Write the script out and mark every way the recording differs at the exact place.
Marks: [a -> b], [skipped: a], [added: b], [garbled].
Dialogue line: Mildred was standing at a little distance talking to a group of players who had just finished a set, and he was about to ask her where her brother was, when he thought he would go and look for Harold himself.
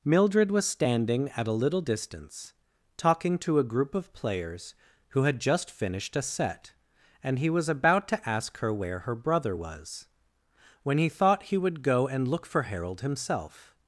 Mildred was standing at a little distance talking to a group of players who had just finished a set, and he was about to ask her where her brother was, when he thought he would go and look for Harold himself.